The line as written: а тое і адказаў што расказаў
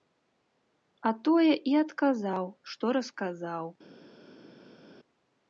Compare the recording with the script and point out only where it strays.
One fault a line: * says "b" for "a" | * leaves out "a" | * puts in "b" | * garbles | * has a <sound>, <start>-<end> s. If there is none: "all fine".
all fine